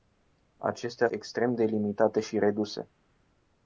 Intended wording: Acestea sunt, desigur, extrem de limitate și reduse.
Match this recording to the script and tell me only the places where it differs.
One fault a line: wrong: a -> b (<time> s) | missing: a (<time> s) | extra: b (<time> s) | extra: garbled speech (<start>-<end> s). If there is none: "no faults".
missing: sunt desigur (1.1 s)